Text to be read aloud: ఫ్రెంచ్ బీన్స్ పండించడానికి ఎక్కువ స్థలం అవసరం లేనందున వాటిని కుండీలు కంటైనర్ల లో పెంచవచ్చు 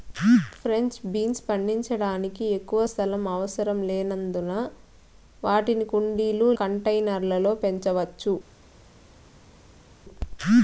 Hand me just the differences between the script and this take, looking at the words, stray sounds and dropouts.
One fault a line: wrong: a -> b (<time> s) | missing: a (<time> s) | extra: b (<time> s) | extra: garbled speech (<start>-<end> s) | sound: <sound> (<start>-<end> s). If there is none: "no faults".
no faults